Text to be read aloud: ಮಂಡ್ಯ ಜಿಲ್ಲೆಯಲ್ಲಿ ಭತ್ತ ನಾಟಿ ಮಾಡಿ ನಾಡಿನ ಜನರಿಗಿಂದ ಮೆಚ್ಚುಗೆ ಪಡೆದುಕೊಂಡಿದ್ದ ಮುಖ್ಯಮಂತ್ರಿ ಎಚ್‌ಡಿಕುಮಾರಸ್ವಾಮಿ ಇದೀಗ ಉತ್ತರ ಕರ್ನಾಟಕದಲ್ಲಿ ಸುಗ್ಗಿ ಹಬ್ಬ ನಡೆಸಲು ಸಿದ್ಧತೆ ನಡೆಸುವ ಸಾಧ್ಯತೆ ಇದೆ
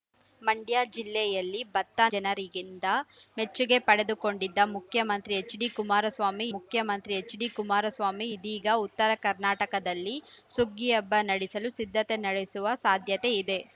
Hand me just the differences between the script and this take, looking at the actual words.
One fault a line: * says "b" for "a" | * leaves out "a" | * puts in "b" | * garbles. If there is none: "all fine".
* leaves out "ನಾಟಿ ಮಾಡಿ ನಾಡಿನ"
* puts in "ಮುಖ್ಯಮಂತ್ರಿ ಎಚ್‌ಡಿಕುಮಾರಸ್ವಾಮಿ"